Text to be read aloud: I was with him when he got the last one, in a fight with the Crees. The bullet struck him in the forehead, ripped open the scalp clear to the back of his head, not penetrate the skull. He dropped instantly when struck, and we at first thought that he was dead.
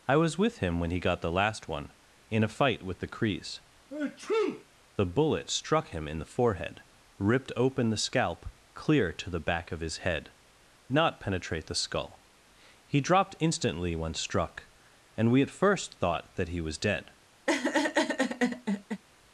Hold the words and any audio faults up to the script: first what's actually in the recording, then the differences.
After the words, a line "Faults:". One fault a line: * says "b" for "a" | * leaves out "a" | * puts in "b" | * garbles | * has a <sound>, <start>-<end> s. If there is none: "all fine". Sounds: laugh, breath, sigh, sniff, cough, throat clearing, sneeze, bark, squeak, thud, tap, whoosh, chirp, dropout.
I was with him when he got the last one, in a fight with the Crees. The bullet struck him in the forehead, ripped open the scalp clear to the back of his head, not penetrate the skull. He dropped instantly when struck, and we at first thought that he was dead.
Faults:
* has a sneeze, 3.9-4.6 s
* has a laugh, 17.5-19.0 s